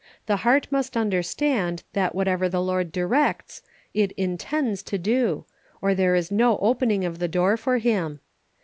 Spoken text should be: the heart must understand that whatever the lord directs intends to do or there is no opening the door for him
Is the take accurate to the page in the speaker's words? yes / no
no